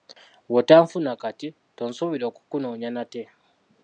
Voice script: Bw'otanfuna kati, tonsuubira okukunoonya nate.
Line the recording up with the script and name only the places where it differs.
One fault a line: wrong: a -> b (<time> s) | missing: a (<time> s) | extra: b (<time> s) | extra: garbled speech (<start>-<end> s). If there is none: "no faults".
no faults